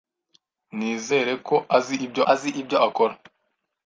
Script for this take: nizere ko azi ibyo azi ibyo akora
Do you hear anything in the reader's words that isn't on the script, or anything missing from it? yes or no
no